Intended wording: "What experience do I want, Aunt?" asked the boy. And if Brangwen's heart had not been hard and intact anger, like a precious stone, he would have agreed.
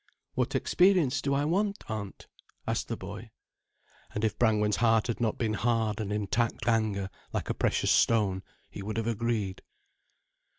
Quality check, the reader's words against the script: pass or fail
pass